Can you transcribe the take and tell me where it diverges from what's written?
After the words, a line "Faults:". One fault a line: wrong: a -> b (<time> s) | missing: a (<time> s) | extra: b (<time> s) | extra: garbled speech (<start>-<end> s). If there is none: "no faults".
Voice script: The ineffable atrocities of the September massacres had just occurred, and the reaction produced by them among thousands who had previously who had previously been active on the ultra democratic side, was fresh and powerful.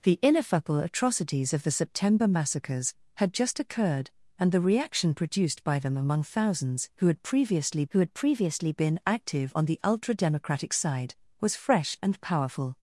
The ineffable atrocities of the September massacres had just occurred, and the reaction produced by them among thousands who had previously who had previously been active on the ultra democratic side, was fresh and powerful.
Faults:
no faults